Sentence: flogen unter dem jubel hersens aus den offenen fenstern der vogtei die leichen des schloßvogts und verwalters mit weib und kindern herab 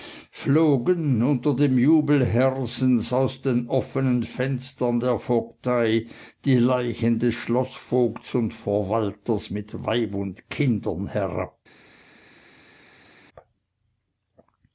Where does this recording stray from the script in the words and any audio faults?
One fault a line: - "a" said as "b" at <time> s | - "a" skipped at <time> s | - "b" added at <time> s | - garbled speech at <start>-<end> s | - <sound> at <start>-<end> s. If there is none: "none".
none